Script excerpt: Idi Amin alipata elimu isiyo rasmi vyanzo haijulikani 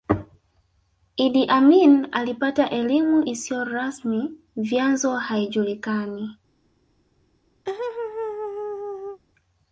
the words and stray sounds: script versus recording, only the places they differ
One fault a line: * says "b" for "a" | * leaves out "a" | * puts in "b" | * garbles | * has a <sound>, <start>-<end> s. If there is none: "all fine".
* has a laugh, 7.7-9.2 s